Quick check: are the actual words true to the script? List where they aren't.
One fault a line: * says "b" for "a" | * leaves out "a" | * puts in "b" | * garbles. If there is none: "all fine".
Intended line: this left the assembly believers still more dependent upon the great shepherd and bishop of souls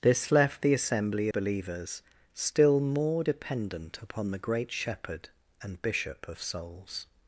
all fine